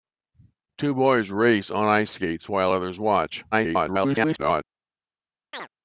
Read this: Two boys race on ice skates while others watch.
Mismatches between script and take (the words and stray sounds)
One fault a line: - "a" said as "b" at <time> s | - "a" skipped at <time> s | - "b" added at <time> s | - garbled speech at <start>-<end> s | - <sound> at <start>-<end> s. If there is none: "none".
- garbled speech at 3.5-4.6 s
- chirp at 5.5-5.7 s